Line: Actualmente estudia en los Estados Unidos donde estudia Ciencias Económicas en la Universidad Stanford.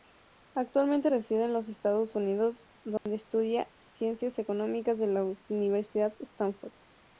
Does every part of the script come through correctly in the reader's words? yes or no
no